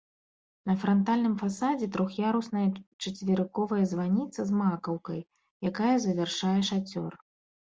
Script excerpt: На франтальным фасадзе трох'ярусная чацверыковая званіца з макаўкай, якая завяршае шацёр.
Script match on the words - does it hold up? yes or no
yes